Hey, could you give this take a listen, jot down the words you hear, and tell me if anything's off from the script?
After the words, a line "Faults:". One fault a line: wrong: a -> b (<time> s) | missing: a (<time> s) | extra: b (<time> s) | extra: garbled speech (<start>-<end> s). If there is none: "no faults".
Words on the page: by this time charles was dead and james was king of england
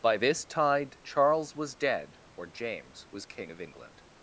by this tide charles was dead or james was king of england
Faults:
wrong: time -> tide (0.5 s)
wrong: and -> or (2.3 s)